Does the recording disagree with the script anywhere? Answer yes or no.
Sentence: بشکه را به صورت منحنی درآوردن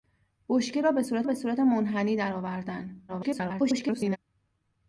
yes